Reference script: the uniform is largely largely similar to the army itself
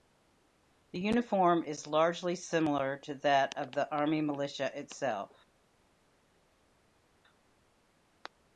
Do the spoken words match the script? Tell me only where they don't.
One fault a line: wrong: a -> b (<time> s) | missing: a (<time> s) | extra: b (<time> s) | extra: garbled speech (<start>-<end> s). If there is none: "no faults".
missing: largely (2.3 s)
extra: that of (3.2 s)
extra: militia (4.2 s)